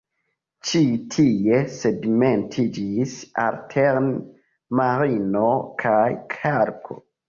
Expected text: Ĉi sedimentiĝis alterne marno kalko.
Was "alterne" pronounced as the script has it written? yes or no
yes